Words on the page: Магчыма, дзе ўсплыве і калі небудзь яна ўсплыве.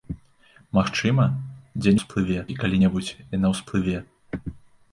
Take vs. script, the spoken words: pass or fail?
pass